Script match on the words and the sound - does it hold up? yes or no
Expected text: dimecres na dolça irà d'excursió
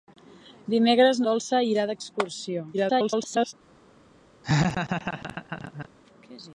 no